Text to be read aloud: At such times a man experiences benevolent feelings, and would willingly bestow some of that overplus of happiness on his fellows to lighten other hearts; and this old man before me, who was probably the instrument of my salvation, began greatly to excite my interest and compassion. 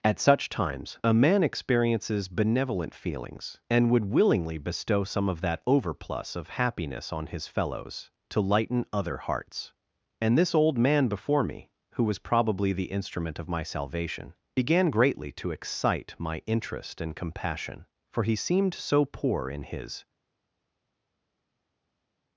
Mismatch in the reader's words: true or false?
true